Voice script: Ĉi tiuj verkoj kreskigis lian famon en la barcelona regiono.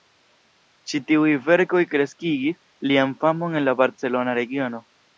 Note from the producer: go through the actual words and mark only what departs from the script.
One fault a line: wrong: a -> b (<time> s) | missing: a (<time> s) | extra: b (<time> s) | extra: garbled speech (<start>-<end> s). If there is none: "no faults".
no faults